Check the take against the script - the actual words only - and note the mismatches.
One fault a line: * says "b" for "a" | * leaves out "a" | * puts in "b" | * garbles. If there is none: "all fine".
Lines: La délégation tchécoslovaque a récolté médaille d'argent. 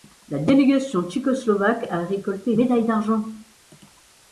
all fine